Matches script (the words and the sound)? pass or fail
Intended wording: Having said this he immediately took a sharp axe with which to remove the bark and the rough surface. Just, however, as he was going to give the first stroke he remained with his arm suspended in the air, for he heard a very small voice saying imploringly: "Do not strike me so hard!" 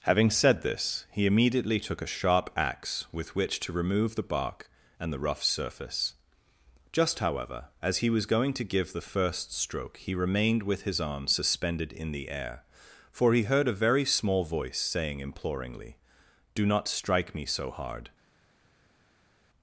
pass